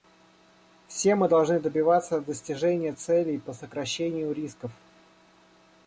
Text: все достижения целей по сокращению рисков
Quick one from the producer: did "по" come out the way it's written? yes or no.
yes